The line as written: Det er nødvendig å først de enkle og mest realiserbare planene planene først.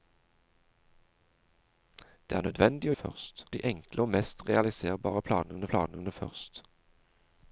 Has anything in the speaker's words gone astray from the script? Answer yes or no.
no